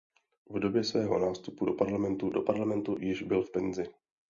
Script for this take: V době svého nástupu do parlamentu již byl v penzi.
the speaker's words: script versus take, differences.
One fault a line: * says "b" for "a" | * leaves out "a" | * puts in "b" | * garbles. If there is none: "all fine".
* puts in "do parlamentu"